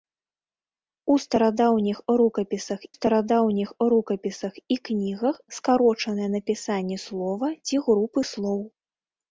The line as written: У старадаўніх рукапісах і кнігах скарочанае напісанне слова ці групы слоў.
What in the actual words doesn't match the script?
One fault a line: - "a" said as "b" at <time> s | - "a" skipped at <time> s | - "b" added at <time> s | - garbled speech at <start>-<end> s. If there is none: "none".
- "старадаўніх рукапісах" added at 2.9 s